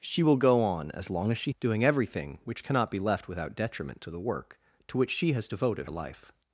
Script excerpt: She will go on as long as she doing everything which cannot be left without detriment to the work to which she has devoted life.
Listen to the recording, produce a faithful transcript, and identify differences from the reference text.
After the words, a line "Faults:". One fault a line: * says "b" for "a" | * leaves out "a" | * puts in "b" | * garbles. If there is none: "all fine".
She will go on as long as she doing everything which cannot be left without detriment to the work to which she has devoted life.
Faults:
all fine